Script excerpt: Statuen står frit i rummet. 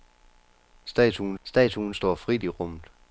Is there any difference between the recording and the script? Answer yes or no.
yes